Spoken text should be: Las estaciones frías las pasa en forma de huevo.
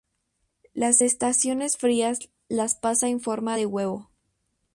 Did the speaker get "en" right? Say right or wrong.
right